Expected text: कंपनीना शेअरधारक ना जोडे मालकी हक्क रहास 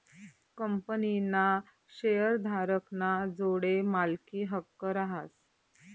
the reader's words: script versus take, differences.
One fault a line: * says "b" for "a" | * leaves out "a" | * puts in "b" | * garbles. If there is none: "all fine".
all fine